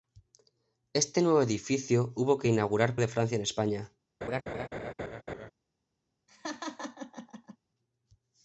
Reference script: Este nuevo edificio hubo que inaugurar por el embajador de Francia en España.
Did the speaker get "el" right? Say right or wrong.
wrong